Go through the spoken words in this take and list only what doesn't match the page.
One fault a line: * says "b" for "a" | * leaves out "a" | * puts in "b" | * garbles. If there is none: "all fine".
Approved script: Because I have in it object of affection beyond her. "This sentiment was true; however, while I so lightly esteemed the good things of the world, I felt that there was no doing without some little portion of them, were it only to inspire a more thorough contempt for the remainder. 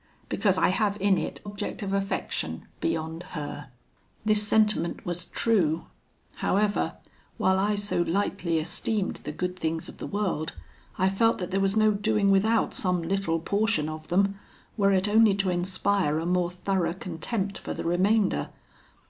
all fine